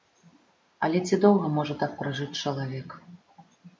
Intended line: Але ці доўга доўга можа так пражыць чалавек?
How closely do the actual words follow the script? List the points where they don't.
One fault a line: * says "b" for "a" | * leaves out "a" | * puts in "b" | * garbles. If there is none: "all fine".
* leaves out "доўга"